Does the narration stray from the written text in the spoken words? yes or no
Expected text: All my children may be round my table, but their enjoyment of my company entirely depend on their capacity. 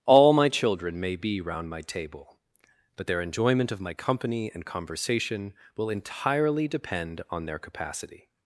yes